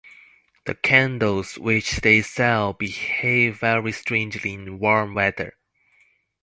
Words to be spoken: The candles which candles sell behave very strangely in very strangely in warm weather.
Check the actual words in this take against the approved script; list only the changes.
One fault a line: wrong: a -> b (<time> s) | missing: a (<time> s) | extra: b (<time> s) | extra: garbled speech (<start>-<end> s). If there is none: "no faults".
wrong: candles -> they (2.0 s)
missing: very strangely in (4.8 s)